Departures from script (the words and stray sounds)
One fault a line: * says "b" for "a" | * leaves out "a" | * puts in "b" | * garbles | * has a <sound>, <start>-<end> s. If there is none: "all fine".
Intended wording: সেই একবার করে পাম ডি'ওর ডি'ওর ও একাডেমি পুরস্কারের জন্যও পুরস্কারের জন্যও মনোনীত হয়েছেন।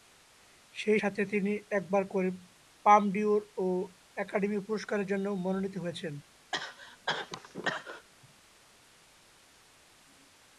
* puts in "সাথে তিনি"
* leaves out "ডি'ওর"
* leaves out "পুরস্কারের জন্যও"
* has a cough, 6.5-8.1 s